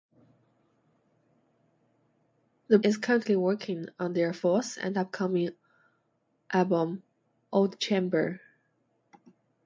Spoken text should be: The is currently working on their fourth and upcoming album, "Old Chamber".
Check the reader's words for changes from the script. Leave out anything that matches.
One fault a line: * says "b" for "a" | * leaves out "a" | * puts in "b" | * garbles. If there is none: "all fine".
all fine